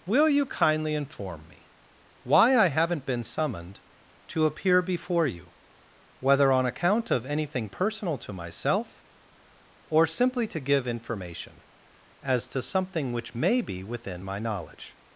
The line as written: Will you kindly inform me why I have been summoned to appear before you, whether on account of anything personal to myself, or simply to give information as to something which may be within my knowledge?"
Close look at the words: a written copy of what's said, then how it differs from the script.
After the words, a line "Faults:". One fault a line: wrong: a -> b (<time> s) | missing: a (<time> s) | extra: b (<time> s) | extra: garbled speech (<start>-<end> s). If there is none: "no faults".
Will you kindly inform me why I haven't been summoned to appear before you, whether on account of anything personal to myself, or simply to give information as to something which may be within my knowledge?"
Faults:
wrong: have -> haven't (2.7 s)